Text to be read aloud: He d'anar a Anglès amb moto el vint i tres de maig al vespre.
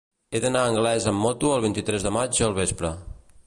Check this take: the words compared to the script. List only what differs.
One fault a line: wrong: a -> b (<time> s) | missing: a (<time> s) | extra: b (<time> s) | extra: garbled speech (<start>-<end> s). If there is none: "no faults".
no faults